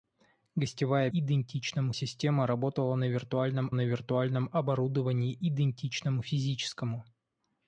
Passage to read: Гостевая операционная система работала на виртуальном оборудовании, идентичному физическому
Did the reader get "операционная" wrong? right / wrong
wrong